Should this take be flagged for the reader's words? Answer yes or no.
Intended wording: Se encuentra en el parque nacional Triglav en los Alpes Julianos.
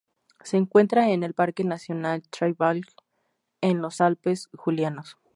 no